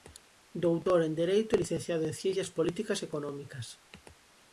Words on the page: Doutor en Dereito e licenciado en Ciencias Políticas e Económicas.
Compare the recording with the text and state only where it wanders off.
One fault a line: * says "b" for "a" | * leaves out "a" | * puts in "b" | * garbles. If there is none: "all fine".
all fine